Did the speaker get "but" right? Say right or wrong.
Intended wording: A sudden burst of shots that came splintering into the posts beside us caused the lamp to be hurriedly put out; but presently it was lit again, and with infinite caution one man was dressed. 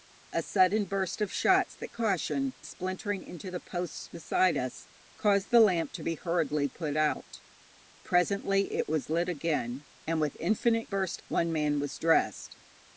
wrong